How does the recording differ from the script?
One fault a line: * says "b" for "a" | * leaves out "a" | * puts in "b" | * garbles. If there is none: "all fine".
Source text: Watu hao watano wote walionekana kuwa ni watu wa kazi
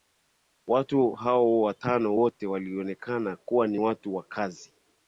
all fine